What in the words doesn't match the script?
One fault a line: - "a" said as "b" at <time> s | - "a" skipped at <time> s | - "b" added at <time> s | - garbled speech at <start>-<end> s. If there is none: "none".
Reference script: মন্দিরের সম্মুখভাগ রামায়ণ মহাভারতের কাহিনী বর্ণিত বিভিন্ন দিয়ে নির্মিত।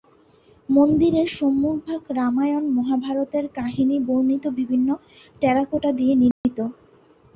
- "টেরাকোটা" added at 5.4 s